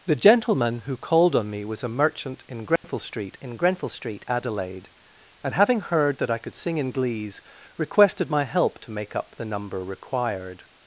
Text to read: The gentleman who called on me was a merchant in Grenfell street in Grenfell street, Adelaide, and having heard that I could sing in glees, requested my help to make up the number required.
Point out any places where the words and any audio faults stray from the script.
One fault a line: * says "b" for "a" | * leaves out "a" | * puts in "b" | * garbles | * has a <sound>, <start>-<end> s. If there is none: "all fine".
* has a dropout, 2.8-2.8 s